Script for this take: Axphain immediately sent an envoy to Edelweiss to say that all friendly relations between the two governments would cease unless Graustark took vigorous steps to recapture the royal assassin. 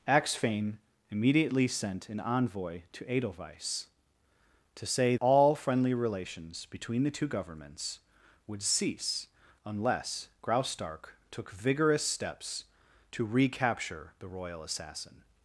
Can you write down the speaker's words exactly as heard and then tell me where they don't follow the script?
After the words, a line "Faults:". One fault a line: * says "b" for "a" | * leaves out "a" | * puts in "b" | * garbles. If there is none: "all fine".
Axphain immediately sent an envoy to Edelweiss to say all friendly relations between the two governments would cease unless Graustark took vigorous steps to recapture the royal assassin.
Faults:
* leaves out "that"